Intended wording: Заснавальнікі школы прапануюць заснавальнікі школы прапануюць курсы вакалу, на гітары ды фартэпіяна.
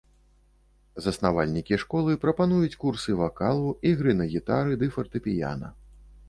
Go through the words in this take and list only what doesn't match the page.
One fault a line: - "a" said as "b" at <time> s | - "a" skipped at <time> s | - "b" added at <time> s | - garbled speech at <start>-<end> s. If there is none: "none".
- "заснавальнікі школы прапануюць" skipped at 2.8 s
- "ігры" added at 3.9 s